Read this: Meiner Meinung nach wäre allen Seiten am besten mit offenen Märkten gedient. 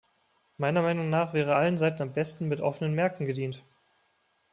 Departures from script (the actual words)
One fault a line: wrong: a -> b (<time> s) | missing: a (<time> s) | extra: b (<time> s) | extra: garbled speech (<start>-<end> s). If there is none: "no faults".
no faults